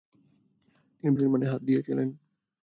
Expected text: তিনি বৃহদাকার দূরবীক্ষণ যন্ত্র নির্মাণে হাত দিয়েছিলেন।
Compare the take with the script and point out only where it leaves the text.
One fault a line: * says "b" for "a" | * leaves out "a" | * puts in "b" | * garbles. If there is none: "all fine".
* leaves out "বৃহদাকার দূরবীক্ষণ যন্ত্র"